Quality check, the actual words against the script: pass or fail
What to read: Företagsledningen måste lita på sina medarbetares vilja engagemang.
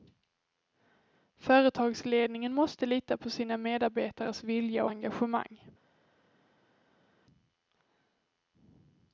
pass